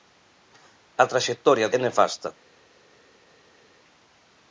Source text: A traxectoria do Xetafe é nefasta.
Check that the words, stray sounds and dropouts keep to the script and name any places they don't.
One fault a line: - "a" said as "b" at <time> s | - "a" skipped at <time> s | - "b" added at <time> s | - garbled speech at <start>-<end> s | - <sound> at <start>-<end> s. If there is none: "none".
- "do Xetafe" skipped at 1.7 s